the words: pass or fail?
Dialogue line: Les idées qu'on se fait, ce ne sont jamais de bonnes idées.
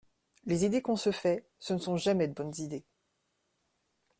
pass